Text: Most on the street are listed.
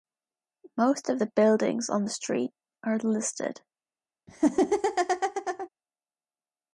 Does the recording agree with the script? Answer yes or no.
no